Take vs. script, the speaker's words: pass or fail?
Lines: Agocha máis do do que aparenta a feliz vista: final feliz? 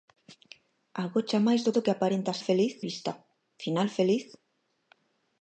pass